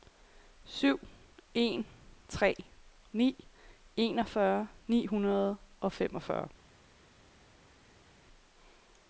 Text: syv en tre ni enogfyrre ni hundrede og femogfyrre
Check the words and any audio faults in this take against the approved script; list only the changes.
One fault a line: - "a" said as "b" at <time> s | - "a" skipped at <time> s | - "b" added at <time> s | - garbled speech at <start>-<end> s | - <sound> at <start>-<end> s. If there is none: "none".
none